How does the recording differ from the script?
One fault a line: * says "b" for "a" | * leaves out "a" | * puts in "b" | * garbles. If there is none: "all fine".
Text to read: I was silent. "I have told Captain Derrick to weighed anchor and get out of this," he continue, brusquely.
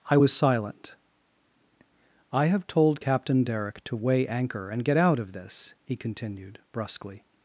* says "weigh" for "weighed"
* says "continued" for "continue"